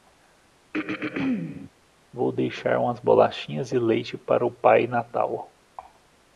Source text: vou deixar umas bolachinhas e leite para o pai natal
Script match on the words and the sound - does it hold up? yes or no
no